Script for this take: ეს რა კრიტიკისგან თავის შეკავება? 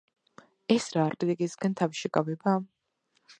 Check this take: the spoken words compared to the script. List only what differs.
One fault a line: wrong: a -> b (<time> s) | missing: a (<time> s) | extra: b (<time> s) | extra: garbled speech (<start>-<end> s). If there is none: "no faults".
no faults